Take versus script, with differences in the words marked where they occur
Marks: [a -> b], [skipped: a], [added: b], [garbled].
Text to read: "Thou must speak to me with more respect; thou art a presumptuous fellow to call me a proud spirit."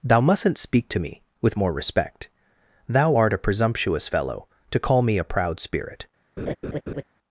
"Thou [must -> mustn't] speak to me with more respect; thou art a presumptuous fellow to call me a proud spirit."